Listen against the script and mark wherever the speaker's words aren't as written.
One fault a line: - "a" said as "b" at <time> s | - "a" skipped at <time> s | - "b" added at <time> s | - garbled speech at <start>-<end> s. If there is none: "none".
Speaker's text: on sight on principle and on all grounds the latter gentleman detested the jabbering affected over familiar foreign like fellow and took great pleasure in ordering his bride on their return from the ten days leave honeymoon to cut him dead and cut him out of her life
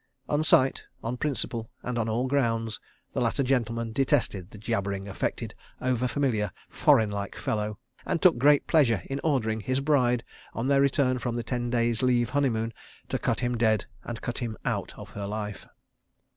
none